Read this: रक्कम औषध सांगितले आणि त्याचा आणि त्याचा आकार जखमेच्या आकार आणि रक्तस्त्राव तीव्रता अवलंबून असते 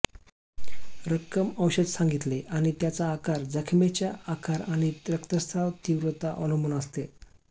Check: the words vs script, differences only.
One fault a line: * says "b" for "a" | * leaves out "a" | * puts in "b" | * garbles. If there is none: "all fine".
* leaves out "आणि त्याचा"